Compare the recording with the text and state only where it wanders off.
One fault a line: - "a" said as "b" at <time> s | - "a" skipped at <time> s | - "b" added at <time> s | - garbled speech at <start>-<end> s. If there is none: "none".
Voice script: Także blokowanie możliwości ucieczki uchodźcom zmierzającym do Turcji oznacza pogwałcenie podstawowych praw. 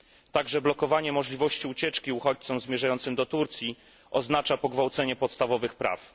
none